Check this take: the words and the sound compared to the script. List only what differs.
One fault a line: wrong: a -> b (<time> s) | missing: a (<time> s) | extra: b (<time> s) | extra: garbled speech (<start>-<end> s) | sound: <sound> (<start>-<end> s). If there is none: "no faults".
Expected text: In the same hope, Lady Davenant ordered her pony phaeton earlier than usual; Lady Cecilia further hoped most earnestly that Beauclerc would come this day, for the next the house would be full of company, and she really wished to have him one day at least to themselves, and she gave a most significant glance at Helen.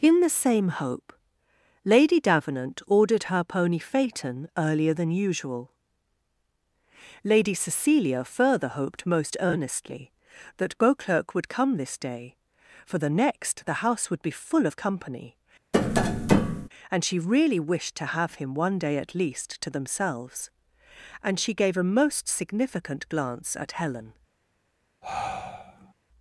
sound: tap (15.7-16.7 s)
sound: sigh (25.0-25.9 s)